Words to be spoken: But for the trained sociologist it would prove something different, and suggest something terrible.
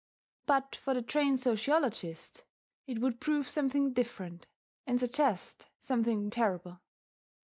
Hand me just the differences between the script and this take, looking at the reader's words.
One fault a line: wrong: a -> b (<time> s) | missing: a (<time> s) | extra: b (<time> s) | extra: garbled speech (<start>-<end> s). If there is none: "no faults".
no faults